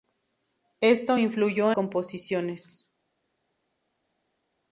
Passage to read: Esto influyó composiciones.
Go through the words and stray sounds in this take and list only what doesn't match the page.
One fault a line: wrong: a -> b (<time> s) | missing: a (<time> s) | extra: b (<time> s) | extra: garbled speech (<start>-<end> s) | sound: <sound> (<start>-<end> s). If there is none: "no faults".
no faults